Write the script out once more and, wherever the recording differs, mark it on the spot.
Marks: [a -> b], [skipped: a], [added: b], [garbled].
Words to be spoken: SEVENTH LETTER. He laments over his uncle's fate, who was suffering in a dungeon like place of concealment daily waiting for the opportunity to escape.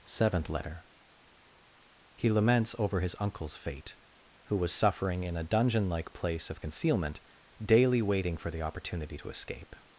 SEVENTH LETTER. He laments over his uncle's fate, who was suffering in a dungeon like place of concealment daily waiting for the opportunity to escape.